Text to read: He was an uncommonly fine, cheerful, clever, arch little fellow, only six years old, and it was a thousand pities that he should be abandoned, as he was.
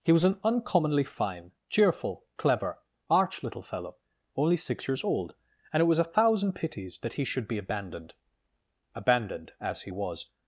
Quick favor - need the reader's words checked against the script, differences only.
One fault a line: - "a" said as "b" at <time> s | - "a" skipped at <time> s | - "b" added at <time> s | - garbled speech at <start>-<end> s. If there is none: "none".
- "abandoned" added at 8.9 s